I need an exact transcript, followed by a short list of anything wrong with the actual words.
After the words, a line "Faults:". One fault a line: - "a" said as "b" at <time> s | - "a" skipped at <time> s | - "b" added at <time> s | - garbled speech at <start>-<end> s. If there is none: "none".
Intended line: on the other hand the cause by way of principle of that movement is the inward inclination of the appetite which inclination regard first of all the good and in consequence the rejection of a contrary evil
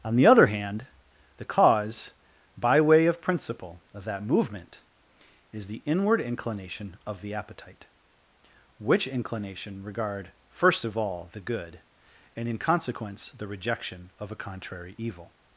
on the other hand the cause by way of principle of that movement is the inward inclination of the appetite which inclination regard first of all the good and in consequence the rejection of a contrary evil
Faults:
none